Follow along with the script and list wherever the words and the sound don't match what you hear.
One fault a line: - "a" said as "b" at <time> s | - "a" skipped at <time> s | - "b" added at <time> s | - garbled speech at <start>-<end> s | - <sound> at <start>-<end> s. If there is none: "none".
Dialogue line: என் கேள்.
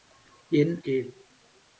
none